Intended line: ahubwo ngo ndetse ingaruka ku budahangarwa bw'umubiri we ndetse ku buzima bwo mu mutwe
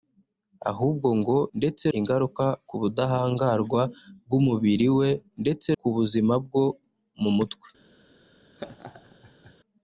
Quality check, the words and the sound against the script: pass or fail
fail